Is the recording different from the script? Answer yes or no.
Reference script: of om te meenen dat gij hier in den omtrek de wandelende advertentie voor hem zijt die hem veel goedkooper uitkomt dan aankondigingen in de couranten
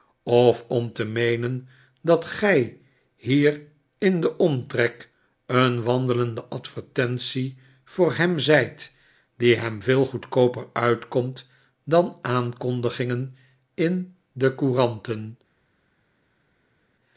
yes